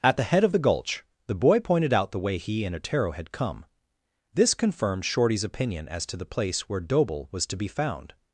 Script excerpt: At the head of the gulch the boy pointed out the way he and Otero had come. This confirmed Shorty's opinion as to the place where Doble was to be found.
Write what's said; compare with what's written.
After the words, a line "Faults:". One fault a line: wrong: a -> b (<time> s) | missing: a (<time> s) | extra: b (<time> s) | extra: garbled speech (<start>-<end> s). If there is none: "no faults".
At the head of the gulch the boy pointed out the way he and Otero had come. This confirmed Shorty's opinion as to the place where Doble was to be found.
Faults:
no faults